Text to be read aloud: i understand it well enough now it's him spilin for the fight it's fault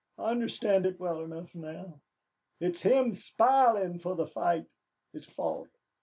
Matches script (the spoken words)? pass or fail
pass